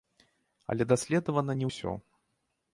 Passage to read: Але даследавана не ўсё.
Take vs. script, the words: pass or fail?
pass